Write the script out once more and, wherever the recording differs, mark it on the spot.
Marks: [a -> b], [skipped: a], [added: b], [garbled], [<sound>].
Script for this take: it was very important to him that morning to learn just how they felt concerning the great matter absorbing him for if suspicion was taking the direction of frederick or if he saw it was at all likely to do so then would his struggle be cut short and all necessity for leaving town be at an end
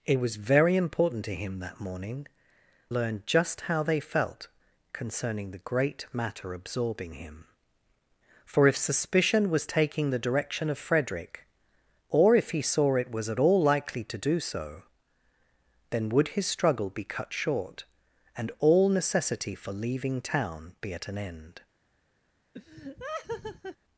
it was very important to him that morning [skipped: to] learn just how they felt concerning the great matter absorbing him for if suspicion was taking the direction of frederick or if he saw it was at all likely to do so then would his struggle be cut short and all necessity for leaving town be at an end [laugh]